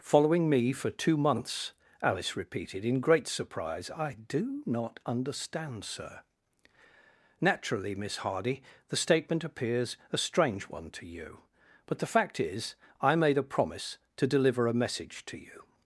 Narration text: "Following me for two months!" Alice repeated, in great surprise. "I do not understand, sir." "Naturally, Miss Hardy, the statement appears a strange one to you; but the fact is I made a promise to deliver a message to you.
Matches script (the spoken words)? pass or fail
pass